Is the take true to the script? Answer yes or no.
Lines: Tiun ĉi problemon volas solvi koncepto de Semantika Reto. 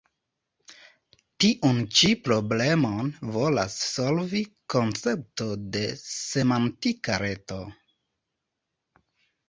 yes